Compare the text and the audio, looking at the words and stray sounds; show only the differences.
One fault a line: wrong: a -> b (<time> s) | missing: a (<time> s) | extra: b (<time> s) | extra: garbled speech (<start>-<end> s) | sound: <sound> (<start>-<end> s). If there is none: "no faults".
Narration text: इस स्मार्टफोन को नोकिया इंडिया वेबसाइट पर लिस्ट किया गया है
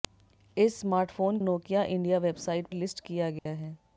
missing: को (1.4 s)
missing: पर (2.7 s)
sound: dropout (3.4-3.5 s)